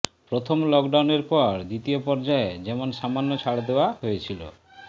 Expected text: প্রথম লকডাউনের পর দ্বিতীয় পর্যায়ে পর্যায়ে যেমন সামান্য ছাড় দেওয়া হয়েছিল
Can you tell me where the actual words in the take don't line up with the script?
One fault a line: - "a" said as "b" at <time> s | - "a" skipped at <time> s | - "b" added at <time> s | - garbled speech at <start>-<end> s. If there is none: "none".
- "পর্যায়ে" skipped at 2.5 s